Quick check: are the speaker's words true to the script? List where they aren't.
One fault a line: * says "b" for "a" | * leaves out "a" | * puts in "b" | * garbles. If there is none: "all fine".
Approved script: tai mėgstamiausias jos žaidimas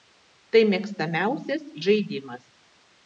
* leaves out "jos"